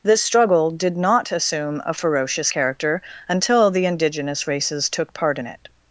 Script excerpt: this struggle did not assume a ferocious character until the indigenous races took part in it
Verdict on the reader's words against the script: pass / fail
pass